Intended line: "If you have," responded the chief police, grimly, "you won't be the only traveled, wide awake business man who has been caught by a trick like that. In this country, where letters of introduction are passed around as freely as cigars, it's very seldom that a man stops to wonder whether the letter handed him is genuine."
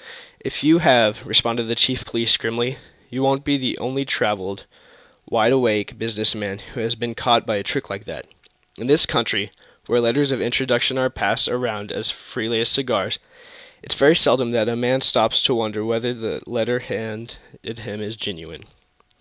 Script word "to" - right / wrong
right